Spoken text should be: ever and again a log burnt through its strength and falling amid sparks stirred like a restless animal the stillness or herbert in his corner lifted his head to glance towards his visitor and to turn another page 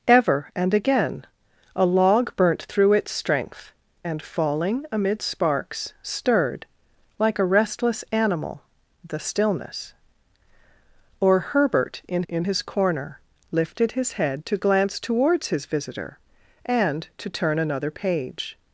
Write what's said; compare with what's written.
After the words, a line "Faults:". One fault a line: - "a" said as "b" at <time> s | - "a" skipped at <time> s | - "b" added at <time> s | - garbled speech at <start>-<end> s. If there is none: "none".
ever and again a log burnt through its strength and falling amid sparks stirred like a restless animal the stillness or herbert in in his corner lifted his head to glance towards his visitor and to turn another page
Faults:
- "in" added at 12.3 s